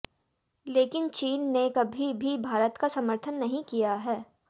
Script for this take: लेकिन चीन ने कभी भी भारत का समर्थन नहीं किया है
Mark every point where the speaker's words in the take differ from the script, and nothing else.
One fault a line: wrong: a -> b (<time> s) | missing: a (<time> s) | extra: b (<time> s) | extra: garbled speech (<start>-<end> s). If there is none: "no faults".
no faults